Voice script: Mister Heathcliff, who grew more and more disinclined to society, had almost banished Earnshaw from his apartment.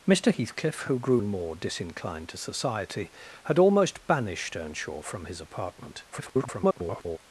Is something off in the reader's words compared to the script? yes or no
yes